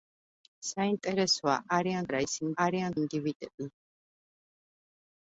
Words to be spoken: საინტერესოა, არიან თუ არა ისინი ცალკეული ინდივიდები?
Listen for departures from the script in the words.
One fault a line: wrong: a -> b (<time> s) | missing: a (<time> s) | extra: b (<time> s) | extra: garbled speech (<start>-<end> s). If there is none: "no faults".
missing: თუ (2.1 s)
wrong: ცალკეული -> არიან (2.6 s)